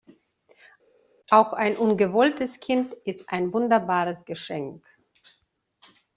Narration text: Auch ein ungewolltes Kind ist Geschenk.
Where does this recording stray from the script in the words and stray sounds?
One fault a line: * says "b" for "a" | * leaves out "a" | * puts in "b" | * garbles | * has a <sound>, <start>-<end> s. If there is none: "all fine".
* puts in "ein wunderbares"